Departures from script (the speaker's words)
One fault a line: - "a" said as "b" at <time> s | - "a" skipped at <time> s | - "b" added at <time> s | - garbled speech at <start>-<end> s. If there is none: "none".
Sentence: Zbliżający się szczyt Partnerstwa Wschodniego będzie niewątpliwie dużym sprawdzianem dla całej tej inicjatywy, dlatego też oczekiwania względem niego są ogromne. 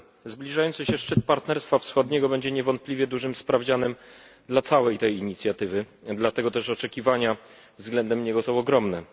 none